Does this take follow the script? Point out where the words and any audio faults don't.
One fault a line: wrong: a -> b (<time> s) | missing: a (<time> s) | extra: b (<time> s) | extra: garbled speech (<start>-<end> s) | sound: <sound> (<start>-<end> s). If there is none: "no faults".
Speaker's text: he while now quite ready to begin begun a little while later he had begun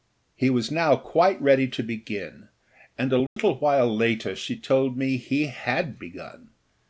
wrong: while -> was (0.5 s)
wrong: begun -> and (3.0 s)
sound: dropout (3.3-3.4 s)
extra: she told me (4.3 s)